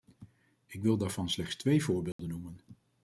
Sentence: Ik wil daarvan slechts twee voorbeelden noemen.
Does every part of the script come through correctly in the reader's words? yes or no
yes